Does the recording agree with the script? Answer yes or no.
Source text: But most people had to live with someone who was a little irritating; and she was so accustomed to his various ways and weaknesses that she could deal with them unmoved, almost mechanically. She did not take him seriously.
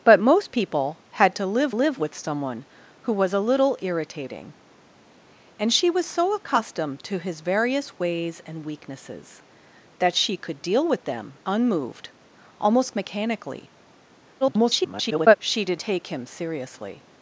no